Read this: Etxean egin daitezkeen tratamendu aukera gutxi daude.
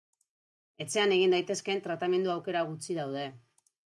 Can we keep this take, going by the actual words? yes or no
yes